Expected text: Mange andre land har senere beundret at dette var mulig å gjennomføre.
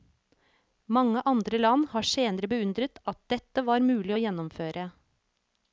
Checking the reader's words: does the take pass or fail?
pass